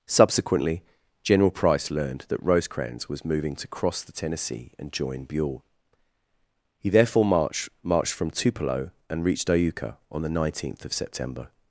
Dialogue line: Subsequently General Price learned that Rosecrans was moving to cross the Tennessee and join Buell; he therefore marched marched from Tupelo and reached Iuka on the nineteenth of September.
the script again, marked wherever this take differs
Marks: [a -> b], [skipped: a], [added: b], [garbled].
Subsequently General Price learned that Rosecrans was moving to cross the Tennessee and join Buell; he therefore marched marched from Tupelo and reached Iuka on the nineteenth of September.